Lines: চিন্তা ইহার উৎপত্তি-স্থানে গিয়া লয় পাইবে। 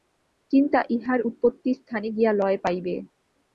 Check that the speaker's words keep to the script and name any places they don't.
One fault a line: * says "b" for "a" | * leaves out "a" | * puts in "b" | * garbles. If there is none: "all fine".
all fine